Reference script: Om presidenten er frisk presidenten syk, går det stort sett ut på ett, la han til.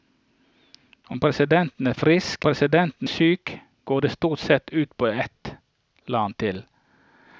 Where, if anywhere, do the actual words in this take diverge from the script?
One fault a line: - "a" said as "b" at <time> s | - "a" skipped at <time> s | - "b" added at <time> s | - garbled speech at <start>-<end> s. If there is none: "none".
none